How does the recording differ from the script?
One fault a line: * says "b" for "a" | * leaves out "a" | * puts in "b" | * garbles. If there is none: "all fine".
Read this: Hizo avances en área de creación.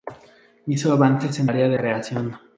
all fine